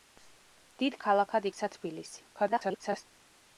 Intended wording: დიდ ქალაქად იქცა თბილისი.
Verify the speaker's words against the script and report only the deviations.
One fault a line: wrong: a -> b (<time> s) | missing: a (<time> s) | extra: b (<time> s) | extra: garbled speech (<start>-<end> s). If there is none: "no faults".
extra: garbled speech (2.3-3.0 s)